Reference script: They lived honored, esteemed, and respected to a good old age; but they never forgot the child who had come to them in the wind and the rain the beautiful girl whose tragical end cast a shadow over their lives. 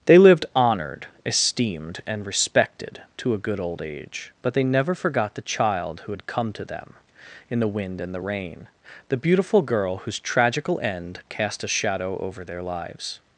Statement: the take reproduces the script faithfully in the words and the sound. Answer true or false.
true